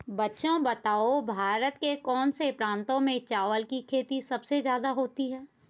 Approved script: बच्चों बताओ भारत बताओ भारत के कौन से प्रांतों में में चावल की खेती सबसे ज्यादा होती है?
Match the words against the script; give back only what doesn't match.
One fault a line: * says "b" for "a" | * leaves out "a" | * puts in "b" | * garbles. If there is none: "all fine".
* leaves out "बताओ भारत"
* leaves out "में"